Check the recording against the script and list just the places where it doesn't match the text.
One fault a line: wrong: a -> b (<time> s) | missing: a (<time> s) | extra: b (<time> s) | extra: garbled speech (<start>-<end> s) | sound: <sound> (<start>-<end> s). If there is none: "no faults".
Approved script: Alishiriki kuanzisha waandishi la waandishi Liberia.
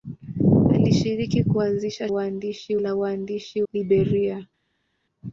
no faults